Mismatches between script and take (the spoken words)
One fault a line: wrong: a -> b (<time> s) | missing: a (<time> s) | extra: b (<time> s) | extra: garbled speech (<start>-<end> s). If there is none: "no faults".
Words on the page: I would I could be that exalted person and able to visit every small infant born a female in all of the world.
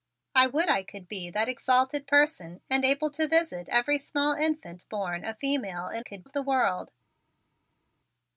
wrong: all -> could (6.0 s)